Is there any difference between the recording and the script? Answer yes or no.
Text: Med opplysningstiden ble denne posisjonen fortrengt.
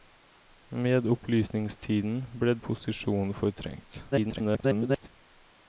yes